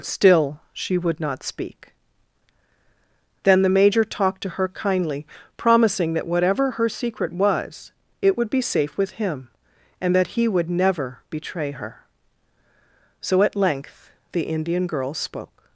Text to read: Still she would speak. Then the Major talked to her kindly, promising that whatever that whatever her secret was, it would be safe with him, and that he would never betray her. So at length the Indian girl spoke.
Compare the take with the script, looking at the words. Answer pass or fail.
fail